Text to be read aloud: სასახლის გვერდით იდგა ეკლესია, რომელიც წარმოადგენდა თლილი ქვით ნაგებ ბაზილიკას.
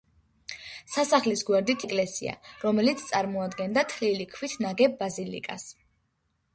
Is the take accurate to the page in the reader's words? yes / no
no